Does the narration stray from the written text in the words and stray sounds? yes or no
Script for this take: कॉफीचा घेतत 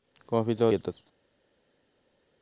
no